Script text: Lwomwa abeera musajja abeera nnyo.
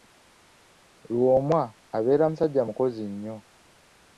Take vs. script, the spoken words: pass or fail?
fail